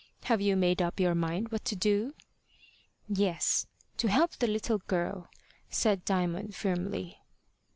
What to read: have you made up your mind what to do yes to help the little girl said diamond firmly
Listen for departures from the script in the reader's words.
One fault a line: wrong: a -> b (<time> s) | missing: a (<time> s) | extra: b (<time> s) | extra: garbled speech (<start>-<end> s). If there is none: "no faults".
no faults